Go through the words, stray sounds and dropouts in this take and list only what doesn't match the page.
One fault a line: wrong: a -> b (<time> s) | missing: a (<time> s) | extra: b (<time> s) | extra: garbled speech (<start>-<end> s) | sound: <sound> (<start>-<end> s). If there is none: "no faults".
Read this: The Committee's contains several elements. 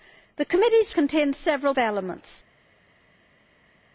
no faults